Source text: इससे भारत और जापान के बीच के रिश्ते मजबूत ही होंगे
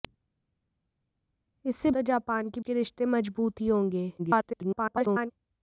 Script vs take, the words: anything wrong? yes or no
yes